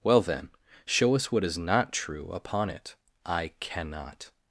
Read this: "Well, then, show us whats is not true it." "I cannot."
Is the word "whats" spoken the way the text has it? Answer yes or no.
no